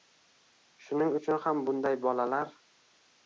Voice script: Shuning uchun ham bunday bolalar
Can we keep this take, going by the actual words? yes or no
yes